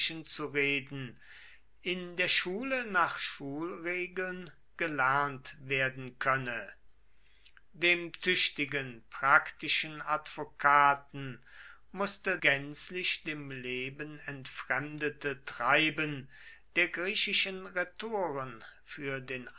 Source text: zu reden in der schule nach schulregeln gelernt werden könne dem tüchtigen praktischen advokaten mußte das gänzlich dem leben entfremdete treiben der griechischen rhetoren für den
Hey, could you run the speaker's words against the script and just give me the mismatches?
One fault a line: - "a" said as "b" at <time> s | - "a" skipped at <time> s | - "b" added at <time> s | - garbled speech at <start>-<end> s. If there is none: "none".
- "das" skipped at 12.4 s